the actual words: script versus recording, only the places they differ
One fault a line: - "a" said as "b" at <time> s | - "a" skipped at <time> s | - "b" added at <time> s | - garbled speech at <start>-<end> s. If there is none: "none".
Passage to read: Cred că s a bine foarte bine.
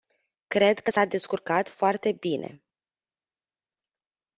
- "bine" said as "descurcat" at 1.1 s